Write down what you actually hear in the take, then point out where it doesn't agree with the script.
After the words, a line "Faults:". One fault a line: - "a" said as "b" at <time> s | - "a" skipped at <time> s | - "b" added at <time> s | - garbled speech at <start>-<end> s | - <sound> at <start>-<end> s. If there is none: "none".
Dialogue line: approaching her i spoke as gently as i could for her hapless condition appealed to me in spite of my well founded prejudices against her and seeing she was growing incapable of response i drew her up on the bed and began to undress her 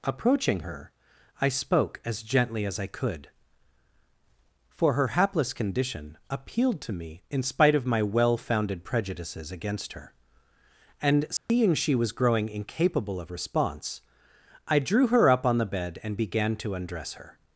approaching her i spoke as gently as i could for her hapless condition appealed to me in spite of my well founded prejudices against her and seeing she was growing incapable of response i drew her up on the bed and began to undress her
Faults:
- dropout at 11.4-11.5 s